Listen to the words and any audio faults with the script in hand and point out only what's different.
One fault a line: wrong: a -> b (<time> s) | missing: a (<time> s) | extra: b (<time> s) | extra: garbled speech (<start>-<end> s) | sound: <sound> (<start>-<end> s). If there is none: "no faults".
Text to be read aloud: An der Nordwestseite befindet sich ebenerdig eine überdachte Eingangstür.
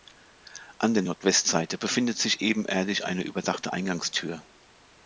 no faults